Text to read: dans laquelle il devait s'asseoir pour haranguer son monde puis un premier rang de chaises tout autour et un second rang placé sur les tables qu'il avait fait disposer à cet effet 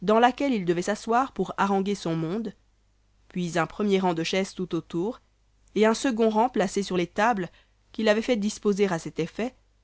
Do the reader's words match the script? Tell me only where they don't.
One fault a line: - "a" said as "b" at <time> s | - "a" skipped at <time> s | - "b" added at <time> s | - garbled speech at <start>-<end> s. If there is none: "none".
none